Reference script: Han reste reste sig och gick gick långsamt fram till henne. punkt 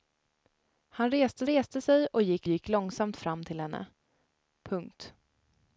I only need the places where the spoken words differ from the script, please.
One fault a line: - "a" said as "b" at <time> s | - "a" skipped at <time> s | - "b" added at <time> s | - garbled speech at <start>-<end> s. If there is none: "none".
none